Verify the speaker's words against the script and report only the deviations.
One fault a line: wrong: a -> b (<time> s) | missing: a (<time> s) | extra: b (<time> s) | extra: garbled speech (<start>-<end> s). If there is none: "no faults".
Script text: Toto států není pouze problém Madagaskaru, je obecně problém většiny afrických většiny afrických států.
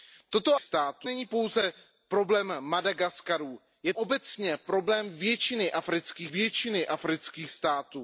no faults